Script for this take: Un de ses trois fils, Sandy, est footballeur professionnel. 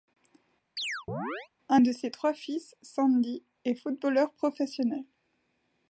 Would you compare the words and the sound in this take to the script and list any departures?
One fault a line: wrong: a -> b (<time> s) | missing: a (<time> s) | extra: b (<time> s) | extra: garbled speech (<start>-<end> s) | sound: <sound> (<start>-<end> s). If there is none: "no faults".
sound: chirp (0.8-1.5 s)